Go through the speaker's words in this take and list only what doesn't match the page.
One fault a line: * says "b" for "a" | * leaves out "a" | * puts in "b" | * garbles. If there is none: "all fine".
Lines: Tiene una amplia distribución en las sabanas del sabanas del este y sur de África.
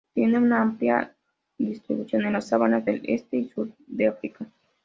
* leaves out "sabanas del"